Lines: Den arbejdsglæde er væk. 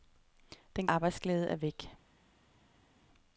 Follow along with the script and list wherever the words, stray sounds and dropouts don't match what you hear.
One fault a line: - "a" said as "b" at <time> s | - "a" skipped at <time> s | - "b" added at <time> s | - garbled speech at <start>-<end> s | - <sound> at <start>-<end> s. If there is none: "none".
none